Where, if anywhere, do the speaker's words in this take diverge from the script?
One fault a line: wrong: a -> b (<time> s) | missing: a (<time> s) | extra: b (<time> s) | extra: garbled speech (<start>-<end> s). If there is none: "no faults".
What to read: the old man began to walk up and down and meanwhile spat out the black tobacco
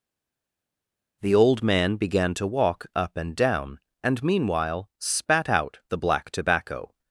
no faults